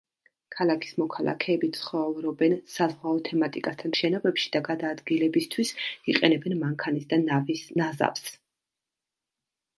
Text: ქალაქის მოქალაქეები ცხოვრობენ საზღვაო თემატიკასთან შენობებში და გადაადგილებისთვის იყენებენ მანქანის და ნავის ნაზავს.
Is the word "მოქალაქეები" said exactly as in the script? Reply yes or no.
yes